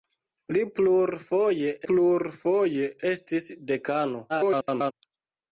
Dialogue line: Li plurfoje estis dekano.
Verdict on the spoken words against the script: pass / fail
fail